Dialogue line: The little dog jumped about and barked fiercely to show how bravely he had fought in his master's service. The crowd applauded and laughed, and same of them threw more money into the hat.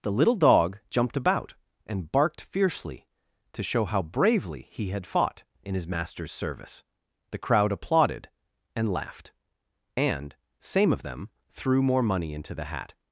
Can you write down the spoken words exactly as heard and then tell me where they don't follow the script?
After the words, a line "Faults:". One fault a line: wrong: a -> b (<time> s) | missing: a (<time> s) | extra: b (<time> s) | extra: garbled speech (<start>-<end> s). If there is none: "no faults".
The little dog jumped about and barked fiercely to show how bravely he had fought in his master's service. The crowd applauded and laughed, and same of them threw more money into the hat.
Faults:
no faults